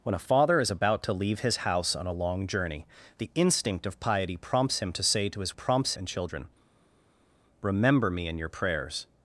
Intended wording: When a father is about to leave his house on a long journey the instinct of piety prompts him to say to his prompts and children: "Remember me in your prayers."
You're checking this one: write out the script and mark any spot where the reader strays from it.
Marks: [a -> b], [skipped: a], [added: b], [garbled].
When a father is about to leave his house on a long journey the instinct of piety prompts him to say to his prompts and children: "Remember me in your prayers."